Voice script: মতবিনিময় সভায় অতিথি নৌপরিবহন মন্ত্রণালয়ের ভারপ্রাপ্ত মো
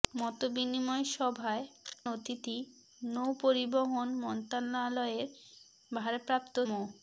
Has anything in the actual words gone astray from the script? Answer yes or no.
no